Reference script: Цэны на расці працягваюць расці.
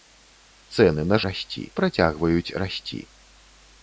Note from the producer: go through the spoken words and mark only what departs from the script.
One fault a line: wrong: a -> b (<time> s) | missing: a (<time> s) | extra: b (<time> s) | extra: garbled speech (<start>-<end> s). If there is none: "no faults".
no faults